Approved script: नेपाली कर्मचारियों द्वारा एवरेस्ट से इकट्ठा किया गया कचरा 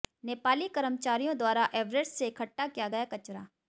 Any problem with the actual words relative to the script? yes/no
no